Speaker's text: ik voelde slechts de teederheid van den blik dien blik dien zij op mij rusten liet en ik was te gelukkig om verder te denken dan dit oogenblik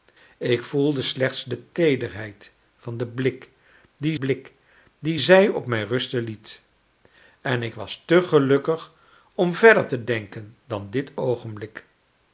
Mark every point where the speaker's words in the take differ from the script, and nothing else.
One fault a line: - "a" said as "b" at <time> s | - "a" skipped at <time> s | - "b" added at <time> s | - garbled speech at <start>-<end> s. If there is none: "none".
none